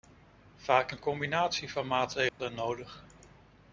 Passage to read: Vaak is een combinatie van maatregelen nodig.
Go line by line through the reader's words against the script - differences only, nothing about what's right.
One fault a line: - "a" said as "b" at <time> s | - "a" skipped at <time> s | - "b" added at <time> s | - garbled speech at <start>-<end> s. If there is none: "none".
- "is" skipped at 0.9 s